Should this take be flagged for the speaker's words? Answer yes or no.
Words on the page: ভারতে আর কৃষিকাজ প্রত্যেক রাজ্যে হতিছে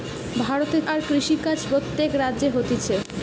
no